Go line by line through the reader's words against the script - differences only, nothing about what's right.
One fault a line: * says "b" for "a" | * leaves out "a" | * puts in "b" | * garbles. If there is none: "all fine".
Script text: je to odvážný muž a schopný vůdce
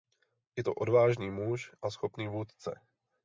all fine